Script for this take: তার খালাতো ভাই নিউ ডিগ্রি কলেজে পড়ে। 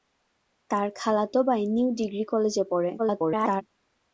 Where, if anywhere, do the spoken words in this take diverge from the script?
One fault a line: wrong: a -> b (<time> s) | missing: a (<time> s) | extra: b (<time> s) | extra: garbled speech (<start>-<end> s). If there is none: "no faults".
extra: garbled speech (3.0-3.6 s)